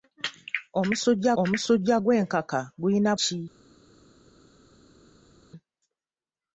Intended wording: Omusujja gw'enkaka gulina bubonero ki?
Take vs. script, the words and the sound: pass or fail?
fail